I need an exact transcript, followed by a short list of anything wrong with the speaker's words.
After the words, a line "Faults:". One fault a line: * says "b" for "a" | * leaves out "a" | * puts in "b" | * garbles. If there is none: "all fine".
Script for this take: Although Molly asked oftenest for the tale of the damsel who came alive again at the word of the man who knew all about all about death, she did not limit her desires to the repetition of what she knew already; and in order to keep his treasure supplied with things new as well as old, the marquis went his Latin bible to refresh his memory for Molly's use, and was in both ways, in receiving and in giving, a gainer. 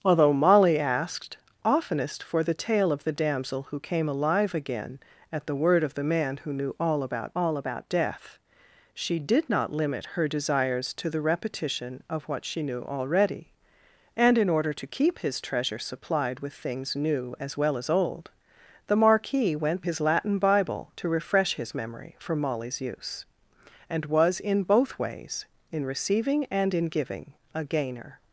Although Molly asked oftenest for the tale of the damsel who came alive again at the word of the man who knew all about all about death, she did not limit her desires to the repetition of what she knew already; and in order to keep his treasure supplied with things new as well as old, the marquis went his Latin bible to refresh his memory for Molly's use, and was in both ways, in receiving and in giving, a gainer.
Faults:
all fine